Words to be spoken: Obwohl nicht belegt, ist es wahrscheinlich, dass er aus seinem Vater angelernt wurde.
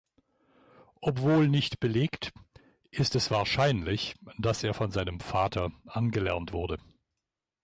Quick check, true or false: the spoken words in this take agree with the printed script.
false